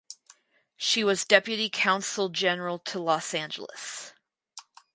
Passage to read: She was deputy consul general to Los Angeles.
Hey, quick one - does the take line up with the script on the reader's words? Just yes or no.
yes